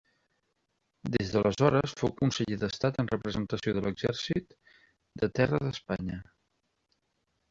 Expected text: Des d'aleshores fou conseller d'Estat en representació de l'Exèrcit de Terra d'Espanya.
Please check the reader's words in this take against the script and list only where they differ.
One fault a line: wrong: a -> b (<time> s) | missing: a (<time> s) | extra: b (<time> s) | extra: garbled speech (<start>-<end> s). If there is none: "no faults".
no faults